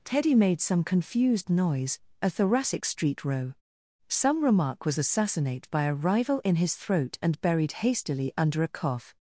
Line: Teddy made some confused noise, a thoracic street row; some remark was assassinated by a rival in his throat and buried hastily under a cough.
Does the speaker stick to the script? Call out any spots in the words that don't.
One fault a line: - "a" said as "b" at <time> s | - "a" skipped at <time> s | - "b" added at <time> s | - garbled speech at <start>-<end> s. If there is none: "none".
- "assassinated" said as "assassinate" at 5.0 s